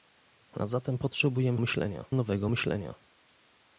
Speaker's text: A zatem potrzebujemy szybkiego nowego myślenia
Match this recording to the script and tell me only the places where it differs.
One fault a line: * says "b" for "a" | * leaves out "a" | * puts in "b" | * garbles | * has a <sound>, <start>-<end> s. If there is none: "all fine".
* says "myślenia" for "szybkiego"